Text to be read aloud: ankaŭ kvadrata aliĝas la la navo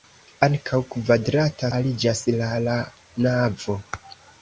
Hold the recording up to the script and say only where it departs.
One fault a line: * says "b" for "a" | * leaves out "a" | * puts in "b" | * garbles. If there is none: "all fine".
all fine